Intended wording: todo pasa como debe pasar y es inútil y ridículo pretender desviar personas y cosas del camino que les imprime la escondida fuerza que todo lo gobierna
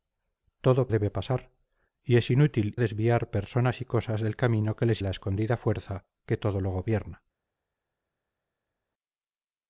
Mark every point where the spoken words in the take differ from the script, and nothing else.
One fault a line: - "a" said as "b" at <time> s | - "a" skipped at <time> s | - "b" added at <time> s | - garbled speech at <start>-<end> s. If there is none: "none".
- "pasa como" skipped at 0.9 s
- "y ridículo pretender" skipped at 2.7 s
- "imprime" skipped at 5.0 s